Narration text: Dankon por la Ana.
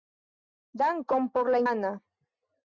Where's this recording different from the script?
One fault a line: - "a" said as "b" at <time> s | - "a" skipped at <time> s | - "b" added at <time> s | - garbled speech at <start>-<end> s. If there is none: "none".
none